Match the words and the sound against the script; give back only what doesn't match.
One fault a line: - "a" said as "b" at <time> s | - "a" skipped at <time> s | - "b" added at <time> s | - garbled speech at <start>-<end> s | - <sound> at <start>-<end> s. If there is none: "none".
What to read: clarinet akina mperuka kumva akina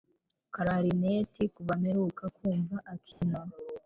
- "akina" said as "kuva" at 1.6 s
- dropout at 3.1-3.2 s